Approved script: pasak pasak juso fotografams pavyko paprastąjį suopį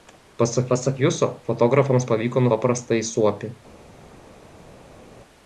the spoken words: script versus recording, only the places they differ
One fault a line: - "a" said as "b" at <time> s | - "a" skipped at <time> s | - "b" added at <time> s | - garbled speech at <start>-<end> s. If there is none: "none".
none